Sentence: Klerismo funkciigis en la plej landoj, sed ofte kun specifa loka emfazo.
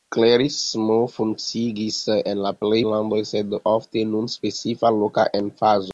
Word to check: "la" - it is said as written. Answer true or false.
true